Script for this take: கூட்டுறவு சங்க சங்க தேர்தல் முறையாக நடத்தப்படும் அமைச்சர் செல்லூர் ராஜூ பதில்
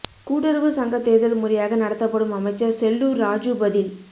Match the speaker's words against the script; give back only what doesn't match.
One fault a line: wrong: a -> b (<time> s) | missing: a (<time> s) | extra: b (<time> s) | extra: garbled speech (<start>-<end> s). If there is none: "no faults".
missing: சங்க (1.0 s)